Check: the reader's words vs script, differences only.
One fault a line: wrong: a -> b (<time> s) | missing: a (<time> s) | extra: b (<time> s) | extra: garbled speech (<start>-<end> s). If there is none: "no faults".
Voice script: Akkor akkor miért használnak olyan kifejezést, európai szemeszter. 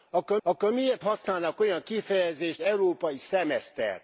no faults